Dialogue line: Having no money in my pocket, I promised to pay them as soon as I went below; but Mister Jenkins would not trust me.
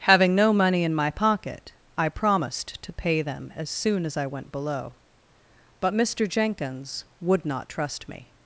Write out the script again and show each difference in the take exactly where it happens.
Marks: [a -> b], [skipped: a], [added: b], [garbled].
Having no money in my pocket, I promised to pay them as soon as I went below; but Mister Jenkins would not trust me.